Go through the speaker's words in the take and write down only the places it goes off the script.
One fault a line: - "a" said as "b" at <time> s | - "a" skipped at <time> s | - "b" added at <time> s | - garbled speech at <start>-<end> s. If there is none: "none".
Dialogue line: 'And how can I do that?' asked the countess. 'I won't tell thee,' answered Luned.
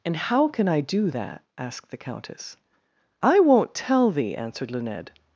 none